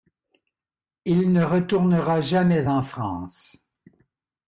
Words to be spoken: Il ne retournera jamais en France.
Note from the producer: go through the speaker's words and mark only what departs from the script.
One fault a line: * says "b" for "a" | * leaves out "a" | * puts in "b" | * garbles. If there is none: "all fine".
all fine